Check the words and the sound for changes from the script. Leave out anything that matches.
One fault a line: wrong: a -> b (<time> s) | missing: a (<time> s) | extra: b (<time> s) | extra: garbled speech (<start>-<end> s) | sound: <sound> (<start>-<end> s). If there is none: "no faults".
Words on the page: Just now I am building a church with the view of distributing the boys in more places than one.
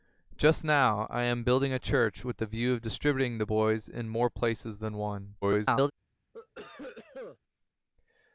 extra: garbled speech (5.4-5.9 s)
sound: cough (6.3-7.4 s)